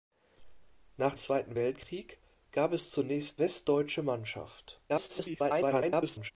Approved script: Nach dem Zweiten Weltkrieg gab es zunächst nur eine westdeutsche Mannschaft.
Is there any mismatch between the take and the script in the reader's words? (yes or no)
yes